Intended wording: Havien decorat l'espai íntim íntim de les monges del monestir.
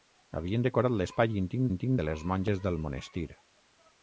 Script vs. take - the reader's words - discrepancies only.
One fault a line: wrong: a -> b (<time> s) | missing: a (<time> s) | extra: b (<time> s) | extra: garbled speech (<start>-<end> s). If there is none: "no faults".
no faults